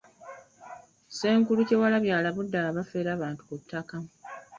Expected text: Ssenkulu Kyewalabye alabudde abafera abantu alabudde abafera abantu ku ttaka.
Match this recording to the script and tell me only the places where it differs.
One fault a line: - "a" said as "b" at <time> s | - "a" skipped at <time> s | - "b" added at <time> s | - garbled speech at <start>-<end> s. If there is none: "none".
- "alabudde abafera abantu" skipped at 3.4 s